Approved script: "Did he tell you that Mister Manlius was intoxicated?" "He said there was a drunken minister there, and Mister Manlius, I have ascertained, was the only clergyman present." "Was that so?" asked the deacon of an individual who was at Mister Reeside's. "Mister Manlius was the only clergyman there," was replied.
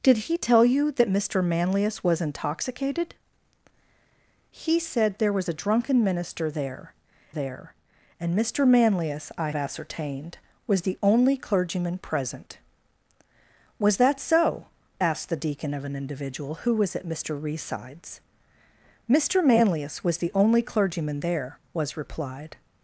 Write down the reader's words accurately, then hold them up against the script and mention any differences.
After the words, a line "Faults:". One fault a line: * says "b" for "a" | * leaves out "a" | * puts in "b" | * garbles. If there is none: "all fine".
"Did he tell you that Mister Manlius was intoxicated?" "He said there was a drunken minister there there, and Mister Manlius, I ascertained, was the only clergyman present." "Was that so?" asked the deacon of an individual who was at Mister Reeside's. "Mister Manlius was the only clergyman there," was replied.
Faults:
* puts in "there"
* leaves out "have"